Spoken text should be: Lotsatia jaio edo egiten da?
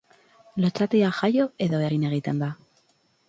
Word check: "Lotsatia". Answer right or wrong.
right